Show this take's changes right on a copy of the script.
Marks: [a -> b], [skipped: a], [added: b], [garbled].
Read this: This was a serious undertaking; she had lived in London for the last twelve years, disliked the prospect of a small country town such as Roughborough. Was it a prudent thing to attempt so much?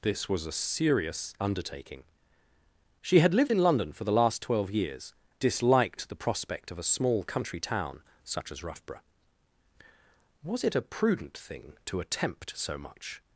This was a serious undertaking; she had lived in London for the last twelve years, disliked the prospect of a small country town such as Roughborough. Was it a prudent thing to attempt so much?